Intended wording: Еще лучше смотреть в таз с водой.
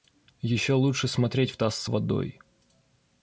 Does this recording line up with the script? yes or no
yes